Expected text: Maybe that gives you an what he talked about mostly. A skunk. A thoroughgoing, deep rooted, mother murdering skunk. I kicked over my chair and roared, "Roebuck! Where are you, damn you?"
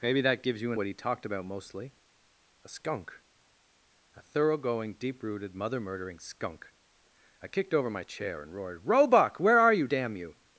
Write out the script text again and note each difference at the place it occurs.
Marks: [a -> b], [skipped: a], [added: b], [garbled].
Maybe that gives you an what he talked about mostly. A skunk. A thoroughgoing, deep rooted, mother murdering skunk. I kicked over my chair and roared, "Roebuck! Where are you, damn you?"